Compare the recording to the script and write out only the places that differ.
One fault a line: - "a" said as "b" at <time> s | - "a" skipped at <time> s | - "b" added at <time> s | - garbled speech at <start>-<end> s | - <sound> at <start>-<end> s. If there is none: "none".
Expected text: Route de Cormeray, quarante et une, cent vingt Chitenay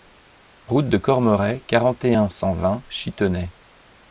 - "une" said as "un" at 2.1 s